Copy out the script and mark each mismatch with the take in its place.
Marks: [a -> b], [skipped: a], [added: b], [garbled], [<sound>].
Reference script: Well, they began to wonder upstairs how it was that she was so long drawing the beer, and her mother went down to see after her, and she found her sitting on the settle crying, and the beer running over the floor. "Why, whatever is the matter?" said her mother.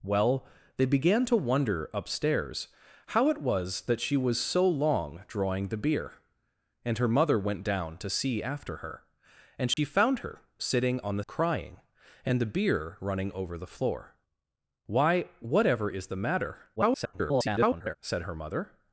Well, they began to wonder upstairs how it was that she was so long drawing the beer, and her mother went down to see after her, and she [dropout] found her sitting on the [skipped: settle] crying, and the beer running over the floor. "Why, whatever is the matter?" [garbled] said her mother.